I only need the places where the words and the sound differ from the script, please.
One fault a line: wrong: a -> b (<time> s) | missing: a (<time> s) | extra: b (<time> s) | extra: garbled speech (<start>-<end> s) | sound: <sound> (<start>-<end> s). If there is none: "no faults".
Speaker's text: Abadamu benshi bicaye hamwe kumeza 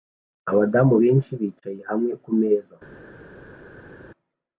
no faults